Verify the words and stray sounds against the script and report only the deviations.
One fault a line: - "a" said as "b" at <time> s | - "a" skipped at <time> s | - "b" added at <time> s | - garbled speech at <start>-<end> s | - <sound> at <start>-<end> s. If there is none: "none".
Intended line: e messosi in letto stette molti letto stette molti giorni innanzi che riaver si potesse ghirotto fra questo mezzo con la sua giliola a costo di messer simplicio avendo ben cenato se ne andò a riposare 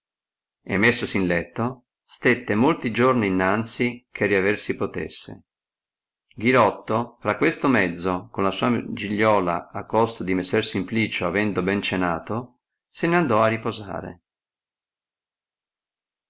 - "letto stette molti" skipped at 2.9 s